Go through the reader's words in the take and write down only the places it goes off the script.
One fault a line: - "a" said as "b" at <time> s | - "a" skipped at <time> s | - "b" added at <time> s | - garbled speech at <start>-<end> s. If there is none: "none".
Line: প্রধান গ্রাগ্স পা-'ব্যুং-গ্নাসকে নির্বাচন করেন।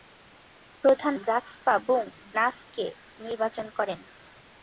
none